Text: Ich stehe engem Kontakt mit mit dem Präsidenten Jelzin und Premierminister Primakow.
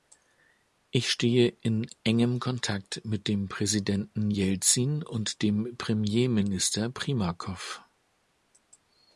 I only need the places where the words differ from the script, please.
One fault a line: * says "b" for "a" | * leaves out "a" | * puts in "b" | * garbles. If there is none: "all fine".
* puts in "in"
* leaves out "mit"
* puts in "dem"